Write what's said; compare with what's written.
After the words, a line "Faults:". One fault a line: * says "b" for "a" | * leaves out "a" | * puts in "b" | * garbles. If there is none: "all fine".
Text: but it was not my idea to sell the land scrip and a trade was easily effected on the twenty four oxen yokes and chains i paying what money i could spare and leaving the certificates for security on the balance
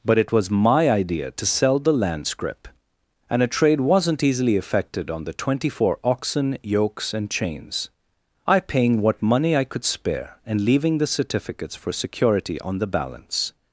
but it was my idea to sell the land scrip and a trade wasn't easily effected on the twenty four oxen yokes and chains i paying what money i could spare and leaving the certificates for security on the balance
Faults:
* leaves out "not"
* says "wasn't" for "was"